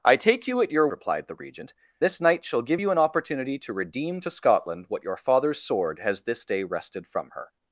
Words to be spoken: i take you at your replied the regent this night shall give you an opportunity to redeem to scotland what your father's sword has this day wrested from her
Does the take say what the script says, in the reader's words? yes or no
yes